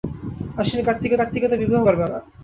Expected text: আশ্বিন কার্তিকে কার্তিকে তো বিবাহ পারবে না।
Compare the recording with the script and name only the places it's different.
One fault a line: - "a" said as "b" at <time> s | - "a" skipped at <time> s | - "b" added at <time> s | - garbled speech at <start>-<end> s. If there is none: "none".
none